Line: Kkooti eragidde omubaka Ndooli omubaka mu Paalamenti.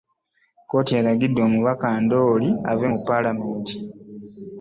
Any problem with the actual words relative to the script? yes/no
yes